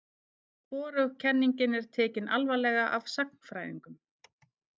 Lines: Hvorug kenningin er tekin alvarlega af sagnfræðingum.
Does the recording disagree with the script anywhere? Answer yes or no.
no